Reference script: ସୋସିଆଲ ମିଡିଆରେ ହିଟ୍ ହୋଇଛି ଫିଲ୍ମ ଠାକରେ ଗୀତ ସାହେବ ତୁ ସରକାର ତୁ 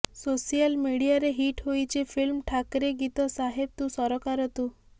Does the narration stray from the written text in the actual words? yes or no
no